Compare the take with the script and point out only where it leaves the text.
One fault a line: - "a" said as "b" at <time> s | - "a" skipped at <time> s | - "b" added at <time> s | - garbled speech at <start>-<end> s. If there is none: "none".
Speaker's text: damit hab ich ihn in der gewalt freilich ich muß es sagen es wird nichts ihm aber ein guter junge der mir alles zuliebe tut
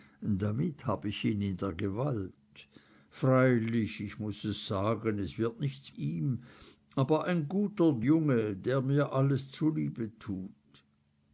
none